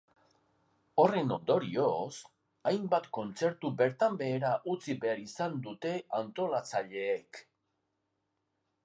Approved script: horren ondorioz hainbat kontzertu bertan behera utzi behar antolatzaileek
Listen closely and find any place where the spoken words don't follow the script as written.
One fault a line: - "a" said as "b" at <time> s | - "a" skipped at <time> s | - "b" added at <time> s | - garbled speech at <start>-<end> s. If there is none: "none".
- "izan dute" added at 5.3 s